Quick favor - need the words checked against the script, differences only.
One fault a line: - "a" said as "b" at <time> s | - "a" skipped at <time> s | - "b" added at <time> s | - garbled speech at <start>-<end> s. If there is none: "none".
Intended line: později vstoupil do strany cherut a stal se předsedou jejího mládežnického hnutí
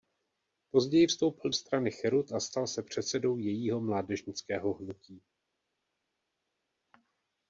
- "do" skipped at 1.5 s